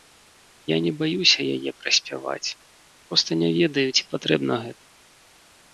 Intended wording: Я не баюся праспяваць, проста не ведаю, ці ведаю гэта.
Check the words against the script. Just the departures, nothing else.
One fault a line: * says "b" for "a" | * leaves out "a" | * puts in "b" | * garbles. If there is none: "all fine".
* puts in "яе"
* says "патрэбна" for "ведаю"